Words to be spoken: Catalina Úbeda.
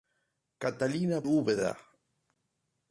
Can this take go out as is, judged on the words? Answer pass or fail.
pass